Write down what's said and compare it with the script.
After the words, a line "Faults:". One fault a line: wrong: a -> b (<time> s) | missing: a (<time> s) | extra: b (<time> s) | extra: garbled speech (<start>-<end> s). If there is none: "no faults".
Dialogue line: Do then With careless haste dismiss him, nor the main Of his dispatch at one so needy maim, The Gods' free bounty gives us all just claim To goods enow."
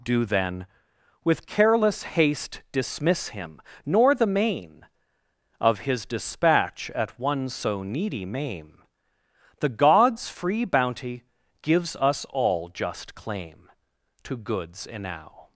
Do then With careless haste dismiss him, nor the main Of his dispatch at one so needy maim, The Gods' free bounty gives us all just claim To goods enow."
Faults:
no faults